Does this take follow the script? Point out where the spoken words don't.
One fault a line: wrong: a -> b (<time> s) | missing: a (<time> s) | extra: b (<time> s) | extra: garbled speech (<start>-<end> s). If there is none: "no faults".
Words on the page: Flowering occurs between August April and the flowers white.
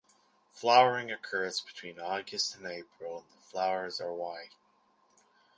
extra: and (2.5 s)
extra: are (4.0 s)